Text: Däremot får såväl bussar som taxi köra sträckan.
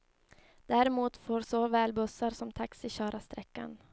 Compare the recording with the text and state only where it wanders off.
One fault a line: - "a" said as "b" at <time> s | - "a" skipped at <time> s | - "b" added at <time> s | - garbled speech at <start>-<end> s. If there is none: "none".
none